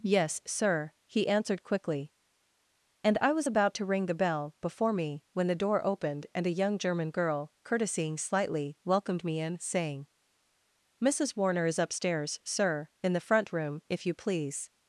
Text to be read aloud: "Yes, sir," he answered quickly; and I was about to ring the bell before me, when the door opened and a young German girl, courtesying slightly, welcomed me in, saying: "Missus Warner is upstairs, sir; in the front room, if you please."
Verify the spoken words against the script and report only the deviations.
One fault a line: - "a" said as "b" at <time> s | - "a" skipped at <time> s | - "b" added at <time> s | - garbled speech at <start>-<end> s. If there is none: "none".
none